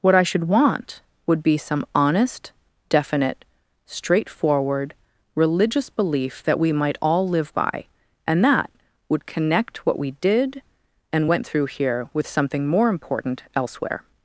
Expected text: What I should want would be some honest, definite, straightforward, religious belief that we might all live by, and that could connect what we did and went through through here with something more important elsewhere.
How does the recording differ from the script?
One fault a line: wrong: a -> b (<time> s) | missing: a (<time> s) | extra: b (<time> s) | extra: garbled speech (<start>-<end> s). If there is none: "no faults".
wrong: could -> would (9.1 s)
missing: through (11.7 s)